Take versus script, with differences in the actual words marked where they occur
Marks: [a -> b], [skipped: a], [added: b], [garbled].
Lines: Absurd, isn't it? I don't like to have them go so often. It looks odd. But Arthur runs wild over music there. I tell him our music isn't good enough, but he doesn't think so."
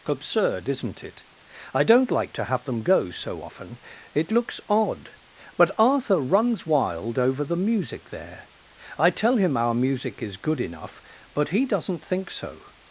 Absurd, isn't it? I don't like to have them go so often. It looks odd. But Arthur runs wild over [added: the] music there. I tell him our music [isn't -> is] good enough, but he doesn't think so."